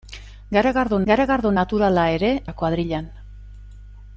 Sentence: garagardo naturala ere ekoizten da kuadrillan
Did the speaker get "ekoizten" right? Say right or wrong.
wrong